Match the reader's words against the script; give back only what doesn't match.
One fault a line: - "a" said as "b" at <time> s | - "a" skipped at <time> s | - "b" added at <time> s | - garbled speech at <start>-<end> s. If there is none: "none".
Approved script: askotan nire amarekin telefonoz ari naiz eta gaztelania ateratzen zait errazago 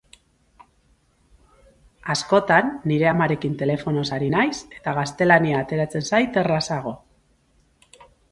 none